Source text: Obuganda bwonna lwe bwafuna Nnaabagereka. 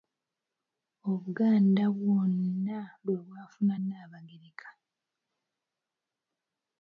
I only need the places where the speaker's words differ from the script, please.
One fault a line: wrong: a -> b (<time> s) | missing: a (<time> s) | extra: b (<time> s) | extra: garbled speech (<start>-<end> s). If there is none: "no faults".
no faults